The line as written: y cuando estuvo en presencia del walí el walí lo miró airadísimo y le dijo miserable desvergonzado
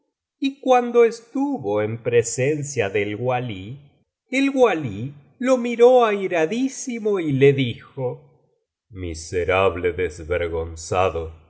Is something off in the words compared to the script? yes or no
no